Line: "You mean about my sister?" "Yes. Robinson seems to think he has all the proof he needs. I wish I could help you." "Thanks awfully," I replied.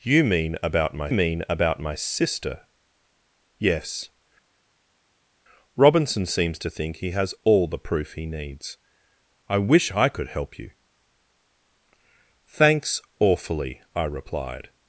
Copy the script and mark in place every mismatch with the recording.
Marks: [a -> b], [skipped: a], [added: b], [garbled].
"You mean about my [added: mean about my] sister?" "Yes. Robinson seems to think he has all the proof he needs. I wish I could help you." "Thanks awfully," I replied.